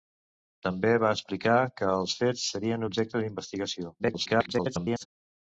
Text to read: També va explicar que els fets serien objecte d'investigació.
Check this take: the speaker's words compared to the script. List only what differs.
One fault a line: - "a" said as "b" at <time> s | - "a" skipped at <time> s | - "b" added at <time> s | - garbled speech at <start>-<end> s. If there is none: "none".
- garbled speech at 4.0-5.1 s